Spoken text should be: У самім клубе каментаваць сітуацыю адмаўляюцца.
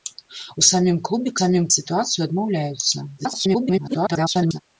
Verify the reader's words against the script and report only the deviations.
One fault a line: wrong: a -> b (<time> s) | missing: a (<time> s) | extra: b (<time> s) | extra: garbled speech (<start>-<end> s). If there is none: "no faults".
wrong: каментаваць -> самім (1.4 s)
extra: garbled speech (3.2-4.6 s)